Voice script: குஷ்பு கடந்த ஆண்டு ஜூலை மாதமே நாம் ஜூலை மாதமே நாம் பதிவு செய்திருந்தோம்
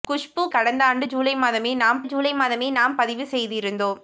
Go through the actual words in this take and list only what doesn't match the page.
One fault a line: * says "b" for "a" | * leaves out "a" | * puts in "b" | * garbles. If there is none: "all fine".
all fine